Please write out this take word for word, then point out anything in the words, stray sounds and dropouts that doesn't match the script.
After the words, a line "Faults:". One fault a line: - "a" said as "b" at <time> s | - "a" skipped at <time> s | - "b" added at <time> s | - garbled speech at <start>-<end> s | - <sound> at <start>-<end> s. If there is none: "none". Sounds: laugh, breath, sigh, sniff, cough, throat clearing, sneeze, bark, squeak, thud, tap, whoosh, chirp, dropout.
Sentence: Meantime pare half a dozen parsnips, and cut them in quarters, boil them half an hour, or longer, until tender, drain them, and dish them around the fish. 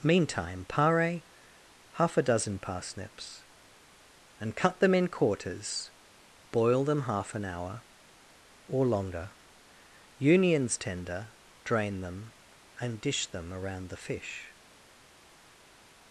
Meantime pare half a dozen parsnips, and cut them in quarters, boil them half an hour, or longer, unions tender, drain them, and dish them around the fish.
Faults:
- "until" said as "unions" at 10.2 s